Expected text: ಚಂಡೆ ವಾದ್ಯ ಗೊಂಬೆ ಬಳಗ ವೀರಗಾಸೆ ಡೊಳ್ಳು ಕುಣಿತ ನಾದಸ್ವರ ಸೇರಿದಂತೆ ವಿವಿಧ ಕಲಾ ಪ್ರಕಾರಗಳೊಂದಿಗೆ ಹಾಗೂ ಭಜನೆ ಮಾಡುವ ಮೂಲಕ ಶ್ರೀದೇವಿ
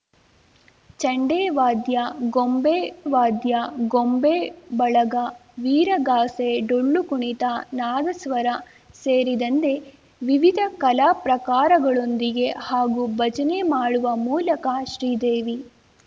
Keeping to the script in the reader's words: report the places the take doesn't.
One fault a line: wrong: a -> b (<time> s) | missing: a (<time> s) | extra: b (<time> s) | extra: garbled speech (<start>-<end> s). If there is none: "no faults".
extra: ವಾದ್ಯ ಗೊಂಬೆ (3.1 s)